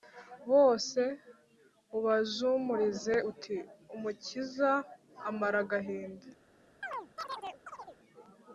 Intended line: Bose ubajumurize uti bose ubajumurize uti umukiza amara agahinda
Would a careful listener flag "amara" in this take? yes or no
no